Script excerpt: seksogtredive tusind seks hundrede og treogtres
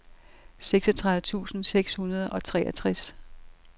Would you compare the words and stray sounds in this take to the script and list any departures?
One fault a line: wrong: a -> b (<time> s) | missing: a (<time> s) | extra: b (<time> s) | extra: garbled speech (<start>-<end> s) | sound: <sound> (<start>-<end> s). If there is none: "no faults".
no faults